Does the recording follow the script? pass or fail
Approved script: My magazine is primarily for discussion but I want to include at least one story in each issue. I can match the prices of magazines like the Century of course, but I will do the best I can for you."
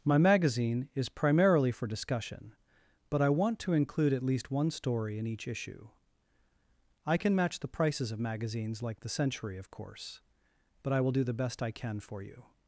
pass